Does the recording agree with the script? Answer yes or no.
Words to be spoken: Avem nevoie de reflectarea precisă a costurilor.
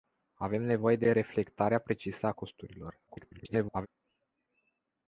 no